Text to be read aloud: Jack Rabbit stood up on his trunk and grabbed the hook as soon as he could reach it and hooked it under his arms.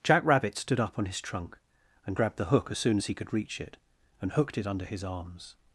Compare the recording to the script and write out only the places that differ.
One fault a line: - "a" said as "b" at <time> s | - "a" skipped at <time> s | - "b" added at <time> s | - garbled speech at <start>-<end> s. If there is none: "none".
none